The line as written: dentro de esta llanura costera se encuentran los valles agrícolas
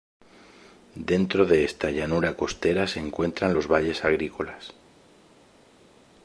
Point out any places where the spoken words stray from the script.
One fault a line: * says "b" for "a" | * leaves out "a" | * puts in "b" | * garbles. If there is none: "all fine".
all fine